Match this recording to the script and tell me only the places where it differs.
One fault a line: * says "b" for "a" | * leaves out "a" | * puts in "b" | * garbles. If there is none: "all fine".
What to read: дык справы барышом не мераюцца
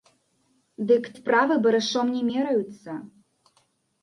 all fine